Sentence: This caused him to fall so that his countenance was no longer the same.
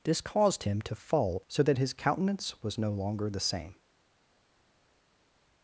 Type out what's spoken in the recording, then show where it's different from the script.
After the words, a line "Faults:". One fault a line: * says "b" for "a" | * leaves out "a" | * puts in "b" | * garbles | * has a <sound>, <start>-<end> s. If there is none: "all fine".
This caused him to fall so that his countenance was no longer the same.
Faults:
all fine